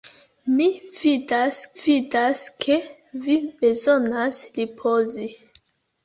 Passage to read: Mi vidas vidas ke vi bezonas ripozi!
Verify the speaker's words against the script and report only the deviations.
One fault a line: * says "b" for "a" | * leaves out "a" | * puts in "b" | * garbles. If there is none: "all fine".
all fine